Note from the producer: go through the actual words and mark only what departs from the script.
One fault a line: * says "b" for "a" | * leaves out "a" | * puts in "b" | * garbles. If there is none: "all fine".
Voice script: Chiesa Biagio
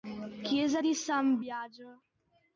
* puts in "di San"